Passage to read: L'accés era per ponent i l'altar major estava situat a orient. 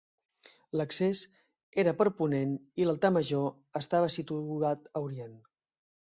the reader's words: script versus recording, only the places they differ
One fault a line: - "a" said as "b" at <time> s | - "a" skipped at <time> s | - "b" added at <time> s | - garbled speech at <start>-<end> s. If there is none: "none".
none